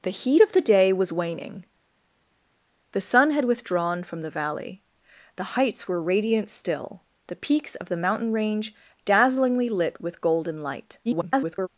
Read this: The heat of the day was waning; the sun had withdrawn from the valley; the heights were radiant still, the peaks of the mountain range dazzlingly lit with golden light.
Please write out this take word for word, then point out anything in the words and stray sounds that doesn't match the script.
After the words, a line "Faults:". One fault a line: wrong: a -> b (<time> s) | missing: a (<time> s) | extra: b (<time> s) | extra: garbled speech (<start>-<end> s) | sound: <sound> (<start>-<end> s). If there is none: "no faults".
The heat of the day was waning; the sun had withdrawn from the valley; the heights were radiant still, the peaks of the mountain range dazzlingly lit with golden light. [garbled]
Faults:
extra: garbled speech (11.0-11.7 s)